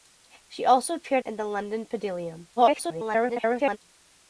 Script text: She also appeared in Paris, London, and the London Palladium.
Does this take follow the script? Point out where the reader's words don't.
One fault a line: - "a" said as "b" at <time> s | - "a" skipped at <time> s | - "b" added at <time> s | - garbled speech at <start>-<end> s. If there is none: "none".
- "in Paris London" skipped at 1.2 s
- garbled speech at 2.6-3.8 s